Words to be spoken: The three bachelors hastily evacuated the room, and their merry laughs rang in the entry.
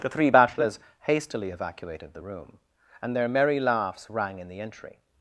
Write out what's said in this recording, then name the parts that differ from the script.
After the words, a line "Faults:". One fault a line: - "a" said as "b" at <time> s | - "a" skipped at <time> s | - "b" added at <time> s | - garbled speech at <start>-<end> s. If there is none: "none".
The three bachelors hastily evacuated the room, and their merry laughs rang in the entry.
Faults:
none